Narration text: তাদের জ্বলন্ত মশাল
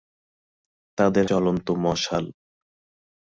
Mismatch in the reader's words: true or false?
false